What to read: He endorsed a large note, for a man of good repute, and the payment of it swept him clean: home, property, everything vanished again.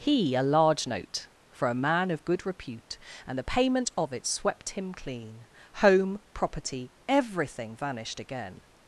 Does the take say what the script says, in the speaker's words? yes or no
no